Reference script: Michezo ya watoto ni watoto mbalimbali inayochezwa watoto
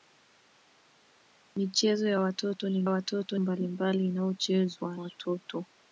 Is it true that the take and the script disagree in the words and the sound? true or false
false